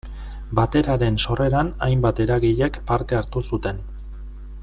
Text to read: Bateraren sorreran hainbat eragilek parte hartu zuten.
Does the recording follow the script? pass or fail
pass